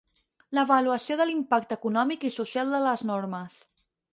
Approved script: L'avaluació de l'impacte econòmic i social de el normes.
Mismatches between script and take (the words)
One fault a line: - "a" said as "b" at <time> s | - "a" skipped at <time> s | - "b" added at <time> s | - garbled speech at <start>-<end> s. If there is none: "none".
- "el" said as "les" at 2.9 s